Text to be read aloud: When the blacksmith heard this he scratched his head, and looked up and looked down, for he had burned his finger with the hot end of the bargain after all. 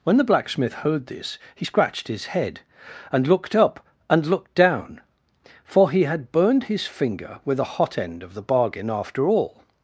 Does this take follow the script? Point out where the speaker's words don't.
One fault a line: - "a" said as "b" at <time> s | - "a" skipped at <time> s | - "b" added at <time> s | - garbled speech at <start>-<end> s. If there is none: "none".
none